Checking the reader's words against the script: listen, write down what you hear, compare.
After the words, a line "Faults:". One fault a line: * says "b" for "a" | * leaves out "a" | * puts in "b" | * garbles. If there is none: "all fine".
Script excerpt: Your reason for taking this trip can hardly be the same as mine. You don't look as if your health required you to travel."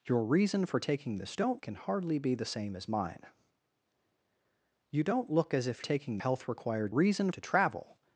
Your reason for taking this don't can hardly be the same as mine. You don't look as if taking health required reason to travel."
Faults:
* says "don't" for "trip"
* says "taking" for "your"
* says "reason" for "you"